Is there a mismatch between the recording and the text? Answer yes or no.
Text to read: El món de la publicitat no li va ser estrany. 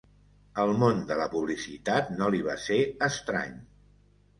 no